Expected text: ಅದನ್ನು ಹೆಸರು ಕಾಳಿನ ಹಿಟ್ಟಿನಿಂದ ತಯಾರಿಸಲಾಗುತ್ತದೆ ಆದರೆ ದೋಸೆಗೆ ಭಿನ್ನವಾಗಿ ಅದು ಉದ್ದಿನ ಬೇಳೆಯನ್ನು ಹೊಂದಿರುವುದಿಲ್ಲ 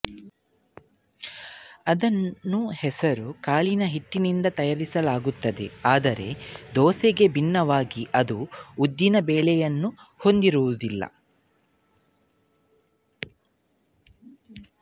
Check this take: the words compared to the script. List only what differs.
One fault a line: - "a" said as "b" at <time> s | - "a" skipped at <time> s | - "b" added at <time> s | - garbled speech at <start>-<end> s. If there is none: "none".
none